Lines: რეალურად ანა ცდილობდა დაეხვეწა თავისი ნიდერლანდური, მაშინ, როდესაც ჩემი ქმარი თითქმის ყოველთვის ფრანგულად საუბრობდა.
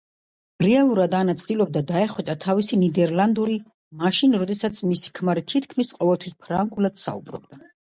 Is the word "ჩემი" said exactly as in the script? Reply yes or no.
no